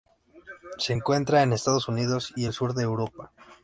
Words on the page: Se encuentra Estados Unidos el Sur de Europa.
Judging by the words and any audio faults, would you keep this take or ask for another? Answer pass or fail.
fail